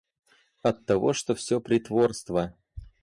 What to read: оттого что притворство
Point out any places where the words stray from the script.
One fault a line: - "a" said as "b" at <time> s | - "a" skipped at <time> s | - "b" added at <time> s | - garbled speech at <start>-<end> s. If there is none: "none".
- "всё" added at 1.4 s